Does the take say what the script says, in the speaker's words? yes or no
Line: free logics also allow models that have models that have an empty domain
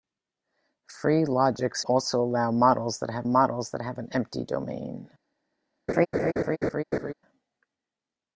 yes